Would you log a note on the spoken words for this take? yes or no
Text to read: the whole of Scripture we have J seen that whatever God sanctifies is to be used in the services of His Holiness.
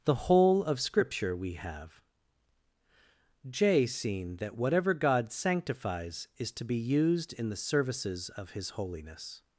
no